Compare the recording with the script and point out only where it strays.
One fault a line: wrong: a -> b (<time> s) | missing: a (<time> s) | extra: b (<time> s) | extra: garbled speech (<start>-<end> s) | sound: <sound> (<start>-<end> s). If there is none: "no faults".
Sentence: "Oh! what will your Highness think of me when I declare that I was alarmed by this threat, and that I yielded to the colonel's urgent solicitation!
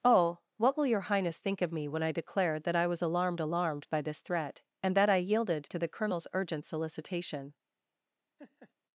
extra: alarmed (3.4 s)
sound: laugh (8.4-8.7 s)